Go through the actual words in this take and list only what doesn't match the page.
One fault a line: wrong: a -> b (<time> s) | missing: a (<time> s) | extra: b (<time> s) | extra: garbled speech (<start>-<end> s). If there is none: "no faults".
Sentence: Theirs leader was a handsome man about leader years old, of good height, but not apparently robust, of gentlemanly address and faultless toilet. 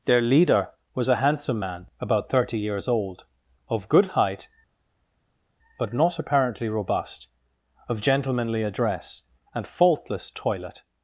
wrong: Theirs -> Their (0.1 s)
wrong: leader -> thirty (2.3 s)